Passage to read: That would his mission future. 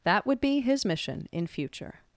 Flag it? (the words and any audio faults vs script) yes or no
yes